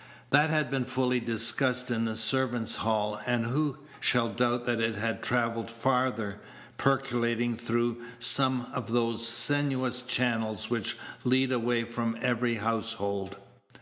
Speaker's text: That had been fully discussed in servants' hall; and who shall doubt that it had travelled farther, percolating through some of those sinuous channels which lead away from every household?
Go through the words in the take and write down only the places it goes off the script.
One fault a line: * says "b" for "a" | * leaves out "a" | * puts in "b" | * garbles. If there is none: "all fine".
* puts in "the"